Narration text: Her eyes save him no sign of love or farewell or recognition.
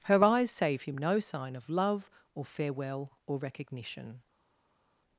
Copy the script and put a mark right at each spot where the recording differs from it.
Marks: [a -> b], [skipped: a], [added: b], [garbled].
Her eyes save him no sign of love or farewell or recognition.